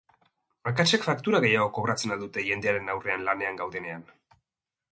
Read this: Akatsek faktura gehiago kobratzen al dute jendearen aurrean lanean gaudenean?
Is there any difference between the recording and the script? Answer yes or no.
no